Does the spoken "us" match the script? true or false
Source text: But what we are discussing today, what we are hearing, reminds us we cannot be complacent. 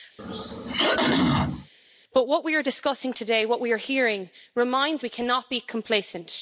false